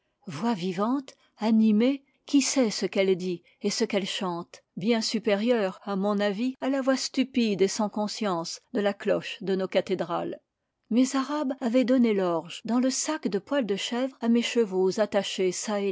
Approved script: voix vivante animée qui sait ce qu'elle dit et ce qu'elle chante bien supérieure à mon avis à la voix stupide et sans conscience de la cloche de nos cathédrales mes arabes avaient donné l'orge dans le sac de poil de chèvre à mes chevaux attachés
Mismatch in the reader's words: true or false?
false